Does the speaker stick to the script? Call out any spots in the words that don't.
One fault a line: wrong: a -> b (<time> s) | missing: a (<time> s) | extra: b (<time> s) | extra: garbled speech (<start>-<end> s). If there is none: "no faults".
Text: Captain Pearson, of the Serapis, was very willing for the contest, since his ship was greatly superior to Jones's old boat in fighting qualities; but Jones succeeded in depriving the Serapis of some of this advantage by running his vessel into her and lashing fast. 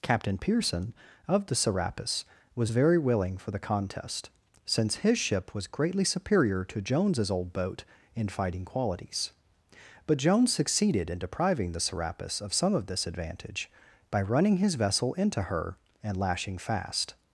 no faults